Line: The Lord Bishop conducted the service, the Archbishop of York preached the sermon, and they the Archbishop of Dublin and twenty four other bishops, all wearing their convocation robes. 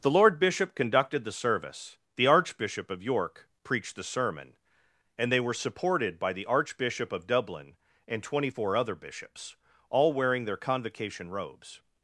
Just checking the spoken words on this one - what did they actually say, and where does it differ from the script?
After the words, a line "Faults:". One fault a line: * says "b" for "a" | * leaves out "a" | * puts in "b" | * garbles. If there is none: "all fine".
The Lord Bishop conducted the service, the Archbishop of York preached the sermon, and they were supported by the Archbishop of Dublin and twenty four other bishops, all wearing their convocation robes.
Faults:
* puts in "were supported by"